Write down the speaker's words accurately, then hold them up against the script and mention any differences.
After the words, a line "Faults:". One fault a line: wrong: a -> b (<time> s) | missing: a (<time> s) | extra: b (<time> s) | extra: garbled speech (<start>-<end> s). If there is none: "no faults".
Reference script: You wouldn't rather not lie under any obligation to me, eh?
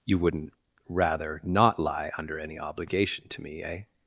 You wouldn't rather not lie under any obligation to me, eh?
Faults:
no faults